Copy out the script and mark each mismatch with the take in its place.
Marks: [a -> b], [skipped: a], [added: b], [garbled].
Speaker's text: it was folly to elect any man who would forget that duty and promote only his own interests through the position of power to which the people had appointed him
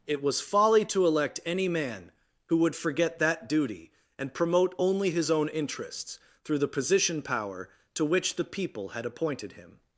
it was folly to elect any man who would forget that duty and promote only his own interests through the position [skipped: of] power to which the people had appointed him